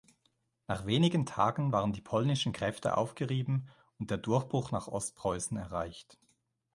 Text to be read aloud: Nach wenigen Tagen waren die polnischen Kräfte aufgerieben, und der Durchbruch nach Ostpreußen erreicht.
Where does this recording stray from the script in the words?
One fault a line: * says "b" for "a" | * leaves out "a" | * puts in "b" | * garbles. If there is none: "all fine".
all fine